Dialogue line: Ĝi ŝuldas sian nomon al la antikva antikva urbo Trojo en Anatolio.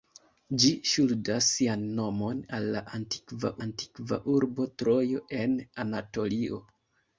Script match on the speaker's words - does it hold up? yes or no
yes